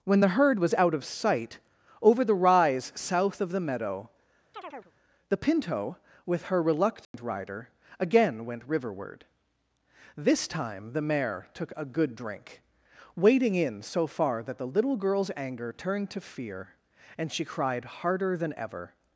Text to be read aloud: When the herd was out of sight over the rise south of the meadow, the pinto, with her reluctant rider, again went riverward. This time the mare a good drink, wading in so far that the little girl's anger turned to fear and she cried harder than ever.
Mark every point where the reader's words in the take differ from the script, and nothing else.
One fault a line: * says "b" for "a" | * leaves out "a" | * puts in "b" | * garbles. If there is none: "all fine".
* puts in "took"